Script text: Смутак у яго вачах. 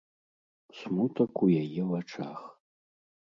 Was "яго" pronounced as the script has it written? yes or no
no